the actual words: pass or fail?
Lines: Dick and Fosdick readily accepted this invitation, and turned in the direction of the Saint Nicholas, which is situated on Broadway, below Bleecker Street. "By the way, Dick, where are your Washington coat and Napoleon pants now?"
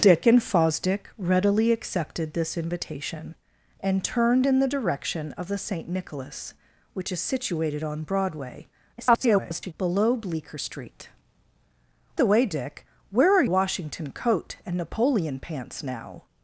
fail